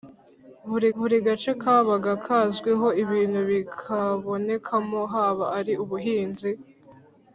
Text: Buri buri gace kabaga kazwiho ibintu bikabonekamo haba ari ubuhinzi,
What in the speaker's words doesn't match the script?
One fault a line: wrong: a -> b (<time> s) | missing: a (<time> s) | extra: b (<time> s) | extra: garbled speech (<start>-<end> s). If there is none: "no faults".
no faults